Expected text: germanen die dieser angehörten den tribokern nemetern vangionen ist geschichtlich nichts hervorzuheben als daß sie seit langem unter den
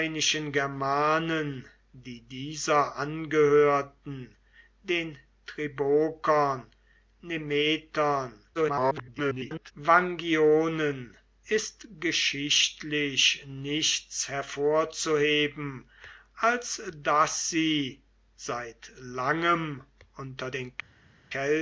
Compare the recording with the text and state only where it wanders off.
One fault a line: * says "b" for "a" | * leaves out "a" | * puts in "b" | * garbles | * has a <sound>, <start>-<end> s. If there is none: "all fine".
* garbles